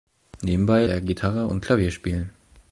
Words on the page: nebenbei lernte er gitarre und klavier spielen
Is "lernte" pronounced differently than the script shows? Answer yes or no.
yes